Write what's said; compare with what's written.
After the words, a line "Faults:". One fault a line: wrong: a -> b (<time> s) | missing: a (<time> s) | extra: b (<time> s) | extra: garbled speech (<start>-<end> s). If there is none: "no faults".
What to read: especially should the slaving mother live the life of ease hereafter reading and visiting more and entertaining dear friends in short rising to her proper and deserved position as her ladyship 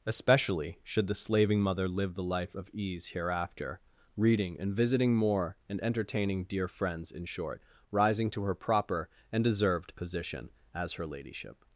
especially should the slaving mother live the life of ease hereafter reading and visiting more and entertaining dear friends in short rising to her proper and deserved position as her ladyship
Faults:
no faults